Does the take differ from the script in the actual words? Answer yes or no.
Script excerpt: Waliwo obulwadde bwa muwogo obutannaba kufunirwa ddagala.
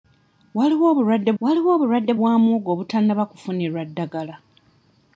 yes